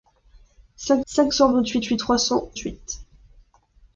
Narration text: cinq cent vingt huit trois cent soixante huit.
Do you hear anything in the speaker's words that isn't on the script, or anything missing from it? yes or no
yes